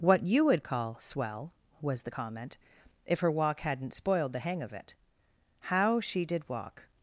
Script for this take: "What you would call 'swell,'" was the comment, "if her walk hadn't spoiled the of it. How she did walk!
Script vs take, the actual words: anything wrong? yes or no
yes